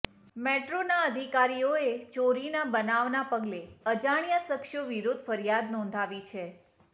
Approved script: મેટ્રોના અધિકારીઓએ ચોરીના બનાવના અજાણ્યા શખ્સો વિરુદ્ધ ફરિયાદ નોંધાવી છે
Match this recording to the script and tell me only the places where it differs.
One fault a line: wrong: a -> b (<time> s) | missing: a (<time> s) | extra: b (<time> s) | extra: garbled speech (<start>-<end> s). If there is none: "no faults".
extra: પગલે (3.3 s)